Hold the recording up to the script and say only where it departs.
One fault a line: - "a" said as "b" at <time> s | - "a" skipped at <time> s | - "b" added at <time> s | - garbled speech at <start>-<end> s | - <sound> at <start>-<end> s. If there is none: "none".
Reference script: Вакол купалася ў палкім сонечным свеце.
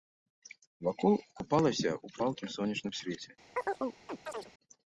- chirp at 3.6-4.5 s